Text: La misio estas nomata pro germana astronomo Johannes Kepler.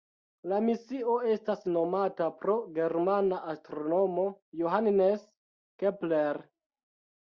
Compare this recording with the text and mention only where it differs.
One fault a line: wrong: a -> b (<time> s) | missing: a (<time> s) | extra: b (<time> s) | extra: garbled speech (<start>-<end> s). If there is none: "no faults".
no faults